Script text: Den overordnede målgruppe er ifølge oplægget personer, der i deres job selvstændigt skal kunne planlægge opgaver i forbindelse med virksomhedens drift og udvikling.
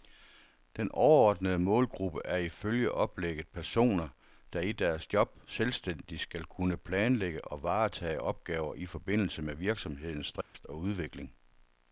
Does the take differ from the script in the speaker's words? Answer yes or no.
yes